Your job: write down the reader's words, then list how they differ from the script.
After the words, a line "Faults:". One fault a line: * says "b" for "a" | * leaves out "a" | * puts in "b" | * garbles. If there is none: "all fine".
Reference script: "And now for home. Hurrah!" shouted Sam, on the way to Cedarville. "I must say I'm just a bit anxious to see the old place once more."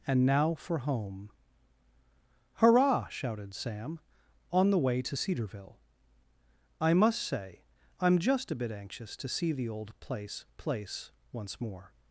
"And now for home. Hurrah!" shouted Sam, on the way to Cedarville. "I must say I'm just a bit anxious to see the old place place once more."
Faults:
* puts in "place"